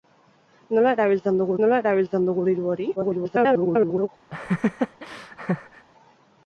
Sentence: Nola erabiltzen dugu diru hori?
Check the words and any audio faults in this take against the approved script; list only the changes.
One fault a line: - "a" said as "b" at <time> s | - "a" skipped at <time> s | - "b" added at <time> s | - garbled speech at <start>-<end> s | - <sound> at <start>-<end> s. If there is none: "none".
- "nola erabiltzen dugu" added at 1.6 s
- garbled speech at 3.0-4.1 s
- laugh at 4.3-5.9 s